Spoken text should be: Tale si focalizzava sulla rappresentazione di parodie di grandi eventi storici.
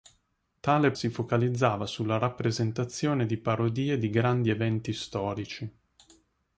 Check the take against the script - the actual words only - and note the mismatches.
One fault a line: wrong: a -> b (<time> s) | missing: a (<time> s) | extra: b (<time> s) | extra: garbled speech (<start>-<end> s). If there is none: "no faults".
no faults